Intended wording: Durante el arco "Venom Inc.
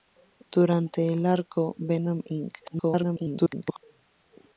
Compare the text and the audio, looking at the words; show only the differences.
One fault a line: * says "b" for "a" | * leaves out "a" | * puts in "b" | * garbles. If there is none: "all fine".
* garbles